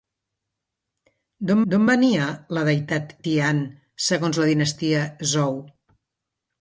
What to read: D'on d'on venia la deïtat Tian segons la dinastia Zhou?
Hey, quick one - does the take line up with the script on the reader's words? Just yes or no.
yes